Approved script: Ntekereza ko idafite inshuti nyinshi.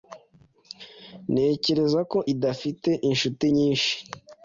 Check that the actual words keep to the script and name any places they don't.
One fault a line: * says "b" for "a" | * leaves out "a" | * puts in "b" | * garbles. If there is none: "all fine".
all fine